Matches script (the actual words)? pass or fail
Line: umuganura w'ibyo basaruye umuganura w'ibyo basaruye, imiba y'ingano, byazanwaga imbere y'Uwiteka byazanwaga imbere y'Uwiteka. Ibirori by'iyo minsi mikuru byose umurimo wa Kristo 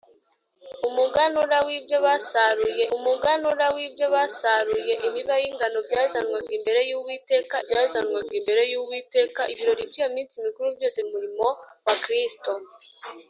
pass